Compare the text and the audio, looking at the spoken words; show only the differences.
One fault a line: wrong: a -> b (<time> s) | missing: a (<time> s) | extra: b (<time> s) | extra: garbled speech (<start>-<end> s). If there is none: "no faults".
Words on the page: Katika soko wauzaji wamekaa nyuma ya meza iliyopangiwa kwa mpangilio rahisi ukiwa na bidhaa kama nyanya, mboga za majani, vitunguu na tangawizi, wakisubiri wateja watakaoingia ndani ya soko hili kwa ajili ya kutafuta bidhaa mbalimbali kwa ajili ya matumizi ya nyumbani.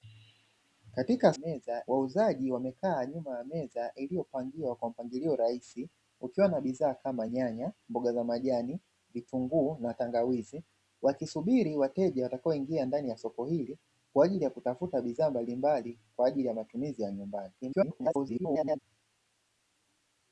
wrong: soko -> meza (1.4 s)
extra: garbled speech (17.6-18.8 s)